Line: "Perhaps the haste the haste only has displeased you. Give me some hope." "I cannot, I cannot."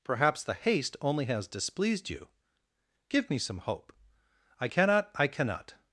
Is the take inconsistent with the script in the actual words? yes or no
yes